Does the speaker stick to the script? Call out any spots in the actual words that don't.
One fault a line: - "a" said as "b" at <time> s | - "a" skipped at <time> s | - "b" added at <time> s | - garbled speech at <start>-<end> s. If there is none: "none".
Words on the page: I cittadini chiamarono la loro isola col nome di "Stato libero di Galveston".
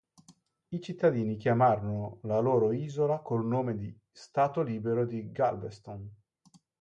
none